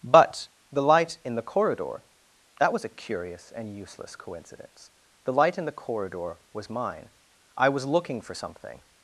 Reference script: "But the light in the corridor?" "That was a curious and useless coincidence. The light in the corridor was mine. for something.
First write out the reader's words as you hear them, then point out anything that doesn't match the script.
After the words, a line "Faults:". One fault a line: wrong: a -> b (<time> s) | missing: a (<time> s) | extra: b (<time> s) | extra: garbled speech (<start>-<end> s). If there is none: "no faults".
"But the light in the corridor?" "That was a curious and useless coincidence. The light in the corridor was mine. I was looking for something.
Faults:
extra: I was looking (7.6 s)